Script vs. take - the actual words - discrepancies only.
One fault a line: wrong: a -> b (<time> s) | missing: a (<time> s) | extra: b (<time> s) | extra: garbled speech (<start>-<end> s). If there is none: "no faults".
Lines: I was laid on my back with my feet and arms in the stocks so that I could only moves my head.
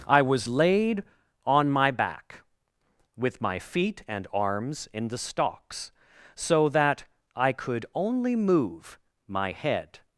wrong: moves -> move (8.4 s)